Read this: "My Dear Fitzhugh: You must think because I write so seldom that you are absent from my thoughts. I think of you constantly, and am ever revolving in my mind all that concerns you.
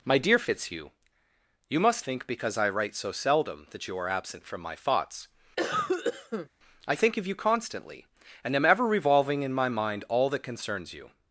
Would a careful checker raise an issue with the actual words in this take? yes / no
no